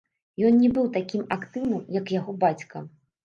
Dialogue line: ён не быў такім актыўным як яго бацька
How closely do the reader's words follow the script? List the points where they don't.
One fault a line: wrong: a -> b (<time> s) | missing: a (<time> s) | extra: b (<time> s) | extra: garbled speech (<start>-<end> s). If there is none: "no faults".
no faults